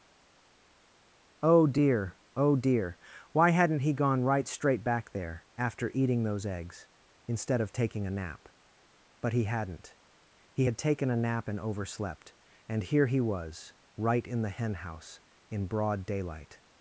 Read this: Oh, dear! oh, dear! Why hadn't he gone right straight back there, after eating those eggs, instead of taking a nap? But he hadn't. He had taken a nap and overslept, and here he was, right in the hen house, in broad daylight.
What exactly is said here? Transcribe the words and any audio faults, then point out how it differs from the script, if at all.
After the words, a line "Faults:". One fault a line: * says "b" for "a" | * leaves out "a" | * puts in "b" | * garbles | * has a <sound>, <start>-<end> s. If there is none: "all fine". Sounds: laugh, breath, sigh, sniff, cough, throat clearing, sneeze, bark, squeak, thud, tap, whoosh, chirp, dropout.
Oh, dear! oh, dear! Why hadn't he gone right straight back there, after eating those eggs, instead of taking a nap? But he hadn't. He had taken a nap and overslept, and here he was, right in the hen house, in broad daylight.
Faults:
all fine